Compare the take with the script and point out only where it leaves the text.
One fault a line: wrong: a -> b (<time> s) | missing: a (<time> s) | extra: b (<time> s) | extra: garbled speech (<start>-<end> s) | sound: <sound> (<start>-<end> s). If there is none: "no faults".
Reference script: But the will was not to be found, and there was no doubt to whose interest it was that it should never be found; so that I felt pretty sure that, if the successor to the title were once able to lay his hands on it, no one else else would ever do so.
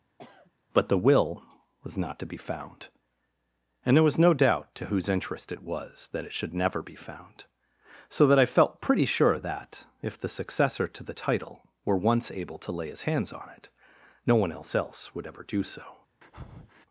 sound: sniff (0.2-0.5 s)
sound: breath (16.2-16.9 s)